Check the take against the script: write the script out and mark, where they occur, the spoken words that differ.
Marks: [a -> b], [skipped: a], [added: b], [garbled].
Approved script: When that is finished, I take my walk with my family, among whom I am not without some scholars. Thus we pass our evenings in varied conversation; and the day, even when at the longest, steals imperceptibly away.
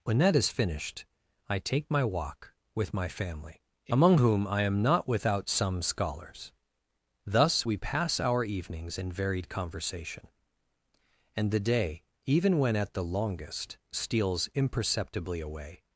When that is finished, I take my walk with my family, among whom I am not without some scholars. Thus we pass our evenings in varied conversation; and the day, even when at the longest, steals imperceptibly away.